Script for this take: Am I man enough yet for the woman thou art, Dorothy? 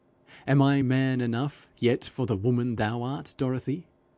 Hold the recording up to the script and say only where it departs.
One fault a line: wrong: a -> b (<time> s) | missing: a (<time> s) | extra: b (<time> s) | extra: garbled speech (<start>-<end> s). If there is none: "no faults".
no faults